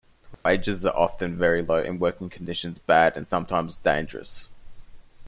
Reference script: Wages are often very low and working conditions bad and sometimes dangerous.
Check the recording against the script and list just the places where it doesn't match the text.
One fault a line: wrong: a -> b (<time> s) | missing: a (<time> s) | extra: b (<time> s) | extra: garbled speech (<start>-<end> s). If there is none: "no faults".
no faults